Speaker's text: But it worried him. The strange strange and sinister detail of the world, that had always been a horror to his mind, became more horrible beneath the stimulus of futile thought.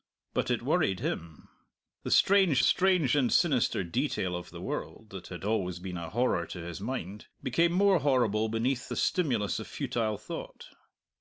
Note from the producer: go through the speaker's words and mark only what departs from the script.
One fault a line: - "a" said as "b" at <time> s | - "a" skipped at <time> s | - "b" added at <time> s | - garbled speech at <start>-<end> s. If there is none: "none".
none